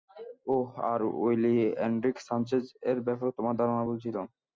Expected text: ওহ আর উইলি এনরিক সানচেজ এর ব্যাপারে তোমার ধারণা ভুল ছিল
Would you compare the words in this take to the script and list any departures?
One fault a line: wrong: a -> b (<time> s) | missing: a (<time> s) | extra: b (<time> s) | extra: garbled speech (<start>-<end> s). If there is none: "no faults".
no faults